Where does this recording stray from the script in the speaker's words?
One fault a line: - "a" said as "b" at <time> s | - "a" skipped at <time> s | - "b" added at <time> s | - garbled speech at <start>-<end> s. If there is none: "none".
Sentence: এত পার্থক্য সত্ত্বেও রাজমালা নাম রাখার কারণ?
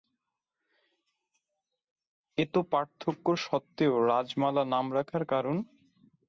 none